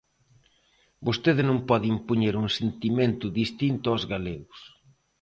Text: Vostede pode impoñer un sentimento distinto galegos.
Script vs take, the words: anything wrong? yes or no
yes